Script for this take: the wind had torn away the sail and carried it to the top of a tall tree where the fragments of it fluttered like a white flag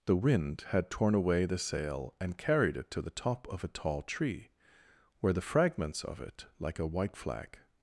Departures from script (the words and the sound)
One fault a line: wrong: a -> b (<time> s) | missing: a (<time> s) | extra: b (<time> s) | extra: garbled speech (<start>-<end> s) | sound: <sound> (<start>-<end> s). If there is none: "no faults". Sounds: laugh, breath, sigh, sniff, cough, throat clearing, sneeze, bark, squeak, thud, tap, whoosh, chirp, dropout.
missing: fluttered (6.5 s)